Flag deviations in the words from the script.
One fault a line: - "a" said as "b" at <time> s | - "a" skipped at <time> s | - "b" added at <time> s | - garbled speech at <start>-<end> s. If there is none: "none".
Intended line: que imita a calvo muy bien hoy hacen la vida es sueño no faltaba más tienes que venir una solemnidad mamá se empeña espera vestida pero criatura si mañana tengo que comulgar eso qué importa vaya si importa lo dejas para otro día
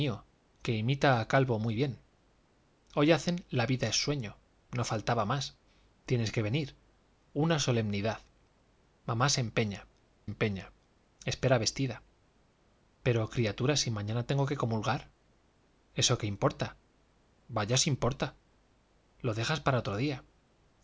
- "empeña" added at 10.2 s